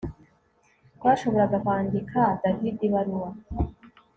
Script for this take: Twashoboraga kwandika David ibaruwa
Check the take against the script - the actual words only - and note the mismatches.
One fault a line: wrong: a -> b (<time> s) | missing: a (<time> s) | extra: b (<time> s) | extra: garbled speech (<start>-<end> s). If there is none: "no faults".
no faults